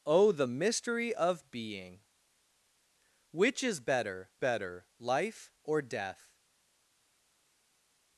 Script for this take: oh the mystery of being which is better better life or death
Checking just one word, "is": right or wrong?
right